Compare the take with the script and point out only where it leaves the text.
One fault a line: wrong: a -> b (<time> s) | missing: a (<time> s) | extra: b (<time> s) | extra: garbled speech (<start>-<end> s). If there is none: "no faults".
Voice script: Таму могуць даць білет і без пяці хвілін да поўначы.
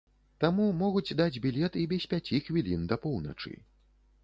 no faults